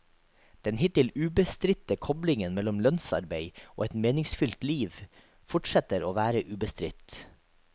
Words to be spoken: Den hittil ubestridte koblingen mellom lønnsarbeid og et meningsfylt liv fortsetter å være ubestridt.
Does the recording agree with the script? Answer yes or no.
yes